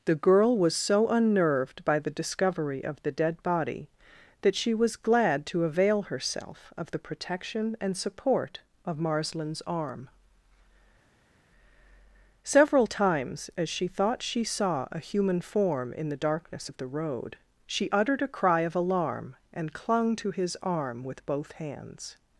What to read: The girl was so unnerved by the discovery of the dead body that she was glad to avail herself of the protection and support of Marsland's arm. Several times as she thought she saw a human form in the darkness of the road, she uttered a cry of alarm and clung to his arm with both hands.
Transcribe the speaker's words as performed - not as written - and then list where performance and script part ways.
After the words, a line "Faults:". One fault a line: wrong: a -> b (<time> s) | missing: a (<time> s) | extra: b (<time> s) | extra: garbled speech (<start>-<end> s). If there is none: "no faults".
The girl was so unnerved by the discovery of the dead body that she was glad to avail herself of the protection and support of Marsland's arm. Several times as she thought she saw a human form in the darkness of the road, she uttered a cry of alarm and clung to his arm with both hands.
Faults:
no faults